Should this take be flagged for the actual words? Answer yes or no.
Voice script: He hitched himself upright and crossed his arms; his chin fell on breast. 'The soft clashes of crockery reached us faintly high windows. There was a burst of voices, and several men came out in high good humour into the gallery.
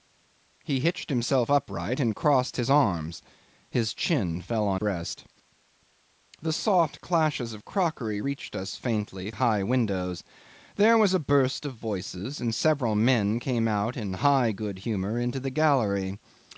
no